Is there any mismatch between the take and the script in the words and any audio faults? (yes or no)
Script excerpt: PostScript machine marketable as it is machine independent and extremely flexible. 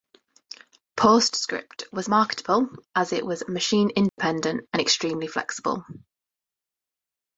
yes